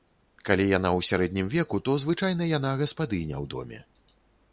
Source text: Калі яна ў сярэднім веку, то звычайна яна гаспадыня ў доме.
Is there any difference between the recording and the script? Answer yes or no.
no